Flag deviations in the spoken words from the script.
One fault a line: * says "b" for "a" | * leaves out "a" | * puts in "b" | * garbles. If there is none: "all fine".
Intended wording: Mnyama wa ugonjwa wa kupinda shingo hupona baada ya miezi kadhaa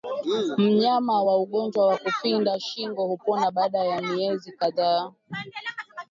all fine